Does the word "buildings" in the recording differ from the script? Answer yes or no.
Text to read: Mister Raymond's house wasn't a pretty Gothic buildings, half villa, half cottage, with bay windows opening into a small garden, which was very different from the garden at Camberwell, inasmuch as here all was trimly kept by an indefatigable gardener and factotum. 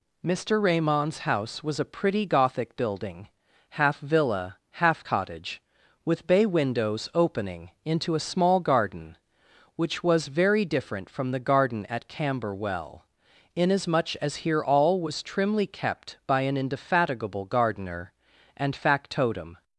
yes